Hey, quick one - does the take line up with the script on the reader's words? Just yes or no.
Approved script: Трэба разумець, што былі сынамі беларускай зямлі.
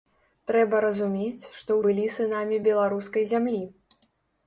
yes